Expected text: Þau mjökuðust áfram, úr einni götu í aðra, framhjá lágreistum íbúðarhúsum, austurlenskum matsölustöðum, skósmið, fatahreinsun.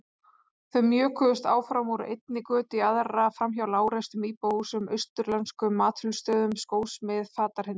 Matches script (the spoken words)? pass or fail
pass